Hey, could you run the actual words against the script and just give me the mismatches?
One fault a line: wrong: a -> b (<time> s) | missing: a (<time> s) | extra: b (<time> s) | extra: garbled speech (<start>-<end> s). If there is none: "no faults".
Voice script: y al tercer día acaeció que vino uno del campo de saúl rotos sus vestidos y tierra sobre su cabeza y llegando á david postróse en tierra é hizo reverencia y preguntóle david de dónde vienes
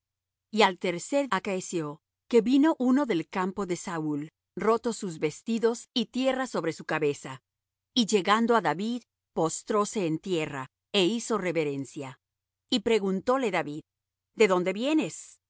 missing: día (1.3 s)